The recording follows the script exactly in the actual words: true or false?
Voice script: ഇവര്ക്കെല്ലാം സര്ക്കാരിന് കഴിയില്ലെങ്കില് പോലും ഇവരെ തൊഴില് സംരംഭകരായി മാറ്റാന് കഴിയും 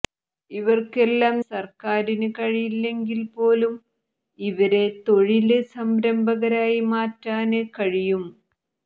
true